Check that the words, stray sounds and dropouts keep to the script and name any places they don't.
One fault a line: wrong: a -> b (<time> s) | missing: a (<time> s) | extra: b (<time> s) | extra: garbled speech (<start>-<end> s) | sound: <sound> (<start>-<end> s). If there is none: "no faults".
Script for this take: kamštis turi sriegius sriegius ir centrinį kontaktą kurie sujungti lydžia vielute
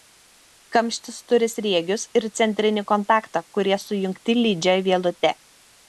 missing: sriegius (2.0 s)